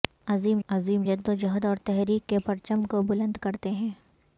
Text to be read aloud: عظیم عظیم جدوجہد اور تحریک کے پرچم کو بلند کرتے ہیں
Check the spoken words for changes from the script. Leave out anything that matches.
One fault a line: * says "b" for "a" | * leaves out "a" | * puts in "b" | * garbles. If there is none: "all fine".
all fine